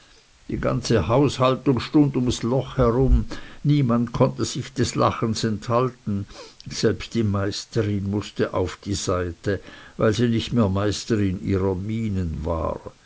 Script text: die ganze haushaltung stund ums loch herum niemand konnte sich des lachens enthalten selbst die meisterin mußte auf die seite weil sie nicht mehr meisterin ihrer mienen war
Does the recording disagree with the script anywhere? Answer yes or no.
no